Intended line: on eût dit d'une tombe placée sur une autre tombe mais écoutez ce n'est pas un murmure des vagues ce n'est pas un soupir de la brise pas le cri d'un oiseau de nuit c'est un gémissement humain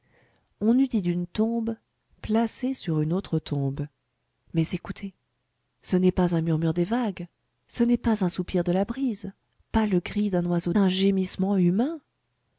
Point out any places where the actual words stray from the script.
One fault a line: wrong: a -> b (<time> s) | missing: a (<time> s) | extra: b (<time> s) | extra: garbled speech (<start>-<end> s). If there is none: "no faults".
missing: de nuit c'est (10.7 s)